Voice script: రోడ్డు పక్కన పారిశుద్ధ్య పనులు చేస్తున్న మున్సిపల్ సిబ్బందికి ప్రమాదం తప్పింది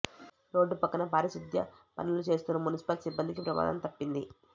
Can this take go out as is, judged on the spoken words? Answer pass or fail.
pass